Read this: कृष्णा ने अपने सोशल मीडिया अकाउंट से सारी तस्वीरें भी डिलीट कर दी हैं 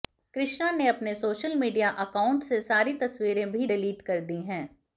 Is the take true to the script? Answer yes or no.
yes